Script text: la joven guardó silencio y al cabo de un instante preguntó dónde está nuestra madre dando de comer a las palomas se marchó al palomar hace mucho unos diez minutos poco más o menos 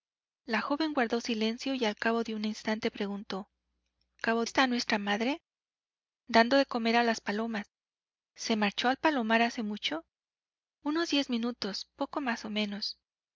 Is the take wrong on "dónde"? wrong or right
wrong